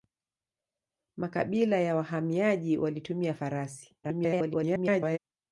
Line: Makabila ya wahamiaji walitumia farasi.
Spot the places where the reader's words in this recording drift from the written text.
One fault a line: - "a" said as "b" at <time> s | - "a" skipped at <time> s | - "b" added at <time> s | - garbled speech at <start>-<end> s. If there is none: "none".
- garbled speech at 4.0-5.2 s